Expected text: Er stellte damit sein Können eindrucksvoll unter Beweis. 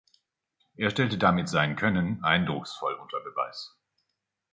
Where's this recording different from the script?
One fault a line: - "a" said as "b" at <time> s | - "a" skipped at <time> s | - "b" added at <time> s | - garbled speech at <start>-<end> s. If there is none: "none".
none